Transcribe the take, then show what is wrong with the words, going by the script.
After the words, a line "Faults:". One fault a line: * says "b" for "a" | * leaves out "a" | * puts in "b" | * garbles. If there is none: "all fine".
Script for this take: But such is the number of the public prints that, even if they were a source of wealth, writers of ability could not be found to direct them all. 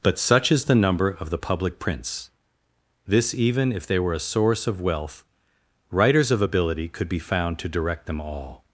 But such is the number of the public prints this, even if they were a source of wealth, writers of ability could be found to direct them all.
Faults:
* says "this" for "that"
* leaves out "not"